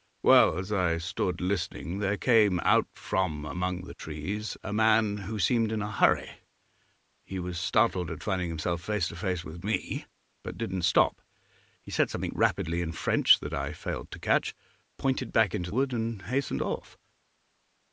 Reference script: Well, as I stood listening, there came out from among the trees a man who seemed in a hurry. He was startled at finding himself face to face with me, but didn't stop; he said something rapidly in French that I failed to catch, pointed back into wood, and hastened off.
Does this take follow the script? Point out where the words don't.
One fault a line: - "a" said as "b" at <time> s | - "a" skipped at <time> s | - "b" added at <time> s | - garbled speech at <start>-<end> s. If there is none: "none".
none